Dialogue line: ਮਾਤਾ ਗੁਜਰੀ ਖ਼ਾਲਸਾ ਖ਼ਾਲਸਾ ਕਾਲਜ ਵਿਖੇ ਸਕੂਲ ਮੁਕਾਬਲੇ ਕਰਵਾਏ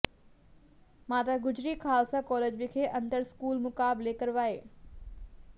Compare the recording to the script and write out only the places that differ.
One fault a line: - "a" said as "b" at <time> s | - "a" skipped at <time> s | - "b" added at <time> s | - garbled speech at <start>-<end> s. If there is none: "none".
- "ਖ਼ਾਲਸਾ" skipped at 2.2 s
- "ਅੰਤਰ" added at 2.9 s